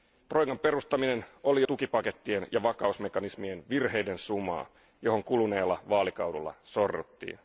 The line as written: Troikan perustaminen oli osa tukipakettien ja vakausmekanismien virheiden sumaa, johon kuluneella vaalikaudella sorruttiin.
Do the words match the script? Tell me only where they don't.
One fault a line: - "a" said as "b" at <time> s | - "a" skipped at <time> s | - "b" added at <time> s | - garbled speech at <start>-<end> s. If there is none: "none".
- "osa" skipped at 1.6 s